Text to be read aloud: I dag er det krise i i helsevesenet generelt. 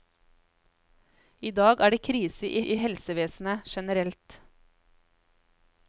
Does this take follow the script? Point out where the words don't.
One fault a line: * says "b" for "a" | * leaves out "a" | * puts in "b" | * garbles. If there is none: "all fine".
all fine